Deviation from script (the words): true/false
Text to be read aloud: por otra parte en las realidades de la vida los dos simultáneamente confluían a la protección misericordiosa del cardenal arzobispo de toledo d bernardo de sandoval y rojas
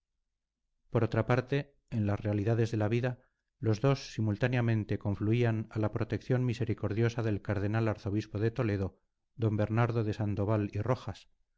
false